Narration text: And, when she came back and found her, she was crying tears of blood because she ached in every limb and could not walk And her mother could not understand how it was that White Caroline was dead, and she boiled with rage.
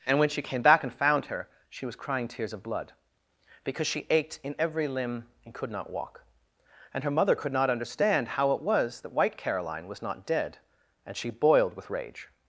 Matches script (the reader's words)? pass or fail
fail